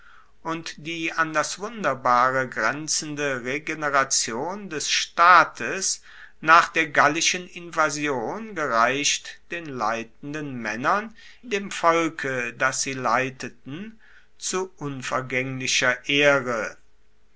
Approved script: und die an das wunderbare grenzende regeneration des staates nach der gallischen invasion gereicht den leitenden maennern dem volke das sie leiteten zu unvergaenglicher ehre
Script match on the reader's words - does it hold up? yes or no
yes